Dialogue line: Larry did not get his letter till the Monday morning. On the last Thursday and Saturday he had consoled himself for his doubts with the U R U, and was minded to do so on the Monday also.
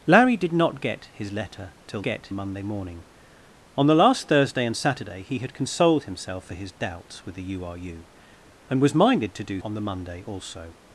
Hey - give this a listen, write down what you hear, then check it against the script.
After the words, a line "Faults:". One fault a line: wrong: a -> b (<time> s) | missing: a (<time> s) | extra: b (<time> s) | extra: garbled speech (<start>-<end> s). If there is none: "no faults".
Larry did not get his letter till get Monday morning. On the last Thursday and Saturday he had consoled himself for his doubts with the U R U, and was minded to do on the Monday also.
Faults:
wrong: the -> get (2.0 s)
missing: so (9.6 s)